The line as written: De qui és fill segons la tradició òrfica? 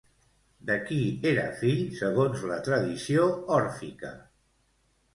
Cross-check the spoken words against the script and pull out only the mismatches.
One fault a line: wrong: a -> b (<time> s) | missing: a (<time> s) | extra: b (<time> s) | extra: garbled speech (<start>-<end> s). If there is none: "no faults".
wrong: és -> era (1.3 s)